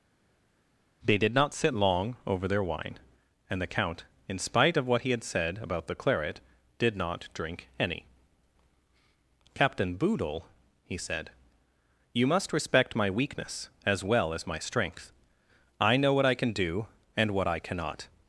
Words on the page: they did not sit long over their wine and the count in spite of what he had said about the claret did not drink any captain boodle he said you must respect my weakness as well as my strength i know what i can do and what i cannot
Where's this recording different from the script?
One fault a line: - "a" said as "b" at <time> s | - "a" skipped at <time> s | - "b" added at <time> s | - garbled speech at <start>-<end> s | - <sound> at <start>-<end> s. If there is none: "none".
none